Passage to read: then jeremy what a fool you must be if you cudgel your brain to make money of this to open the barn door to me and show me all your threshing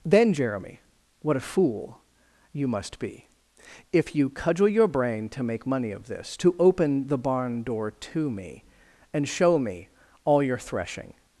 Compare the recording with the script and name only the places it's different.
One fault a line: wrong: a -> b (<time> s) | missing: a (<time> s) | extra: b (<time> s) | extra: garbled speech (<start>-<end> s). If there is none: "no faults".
no faults